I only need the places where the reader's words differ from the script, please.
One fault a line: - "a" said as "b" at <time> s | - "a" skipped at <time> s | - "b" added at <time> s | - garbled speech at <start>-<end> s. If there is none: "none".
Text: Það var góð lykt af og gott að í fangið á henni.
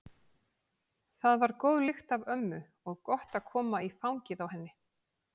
- "ömmu" added at 2.3 s
- "koma" added at 3.5 s